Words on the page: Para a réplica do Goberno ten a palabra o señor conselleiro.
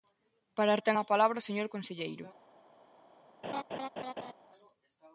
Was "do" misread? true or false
true